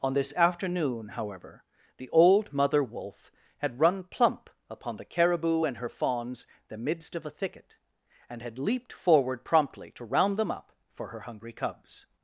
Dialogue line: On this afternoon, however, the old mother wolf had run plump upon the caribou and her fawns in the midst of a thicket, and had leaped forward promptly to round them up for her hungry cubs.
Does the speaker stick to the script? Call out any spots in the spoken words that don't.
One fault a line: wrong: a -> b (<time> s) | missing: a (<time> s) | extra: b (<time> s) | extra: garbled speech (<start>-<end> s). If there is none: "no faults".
missing: in (6.5 s)